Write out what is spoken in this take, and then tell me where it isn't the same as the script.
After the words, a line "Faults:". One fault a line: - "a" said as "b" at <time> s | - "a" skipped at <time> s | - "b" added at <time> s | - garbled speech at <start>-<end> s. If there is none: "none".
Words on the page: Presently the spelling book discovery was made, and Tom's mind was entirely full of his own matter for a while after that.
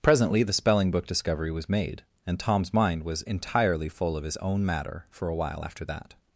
Presently the spelling book discovery was made, and Tom's mind was entirely full of his own matter for a while after that.
Faults:
none